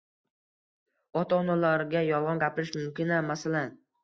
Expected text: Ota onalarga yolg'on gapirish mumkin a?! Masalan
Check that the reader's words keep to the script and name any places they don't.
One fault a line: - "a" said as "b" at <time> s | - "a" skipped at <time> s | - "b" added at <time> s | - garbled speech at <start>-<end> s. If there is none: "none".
none